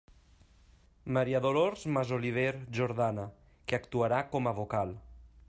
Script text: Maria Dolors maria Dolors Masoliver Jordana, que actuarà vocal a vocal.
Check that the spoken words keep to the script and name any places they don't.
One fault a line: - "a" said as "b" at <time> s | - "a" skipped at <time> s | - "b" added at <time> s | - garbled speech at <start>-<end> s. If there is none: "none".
- "maria Dolors" skipped at 1.9 s
- "vocal" said as "com" at 4.3 s